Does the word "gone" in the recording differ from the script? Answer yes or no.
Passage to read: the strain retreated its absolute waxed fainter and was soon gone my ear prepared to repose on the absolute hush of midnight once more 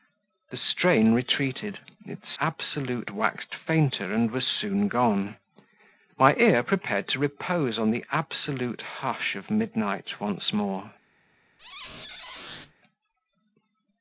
no